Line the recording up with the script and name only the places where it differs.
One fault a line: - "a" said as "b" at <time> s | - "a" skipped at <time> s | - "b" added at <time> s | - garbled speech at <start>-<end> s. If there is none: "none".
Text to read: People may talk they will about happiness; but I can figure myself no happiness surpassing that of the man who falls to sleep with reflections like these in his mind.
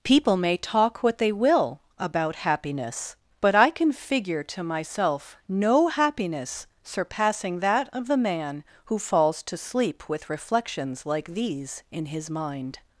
- "what" added at 1.0 s
- "to" added at 4.4 s